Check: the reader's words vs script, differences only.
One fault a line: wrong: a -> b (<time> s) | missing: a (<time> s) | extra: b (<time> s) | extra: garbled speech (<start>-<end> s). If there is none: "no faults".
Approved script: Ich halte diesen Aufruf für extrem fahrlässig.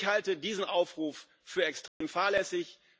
no faults